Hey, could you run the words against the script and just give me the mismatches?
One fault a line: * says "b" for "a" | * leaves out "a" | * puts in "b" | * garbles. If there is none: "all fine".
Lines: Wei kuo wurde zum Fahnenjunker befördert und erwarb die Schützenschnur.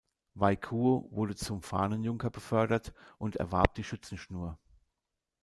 all fine